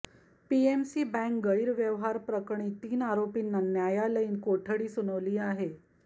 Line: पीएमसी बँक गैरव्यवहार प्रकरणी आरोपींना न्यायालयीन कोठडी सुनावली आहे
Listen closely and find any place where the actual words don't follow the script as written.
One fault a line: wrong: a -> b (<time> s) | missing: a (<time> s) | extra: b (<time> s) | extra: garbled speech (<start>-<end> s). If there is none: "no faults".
extra: तीन (2.8 s)